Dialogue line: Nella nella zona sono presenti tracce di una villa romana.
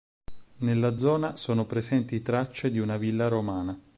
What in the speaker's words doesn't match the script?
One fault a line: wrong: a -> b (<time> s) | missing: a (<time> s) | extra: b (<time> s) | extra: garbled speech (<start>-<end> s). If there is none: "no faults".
missing: nella (1.0 s)